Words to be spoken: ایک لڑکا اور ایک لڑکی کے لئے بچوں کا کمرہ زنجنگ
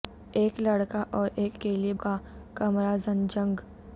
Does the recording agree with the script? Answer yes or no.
no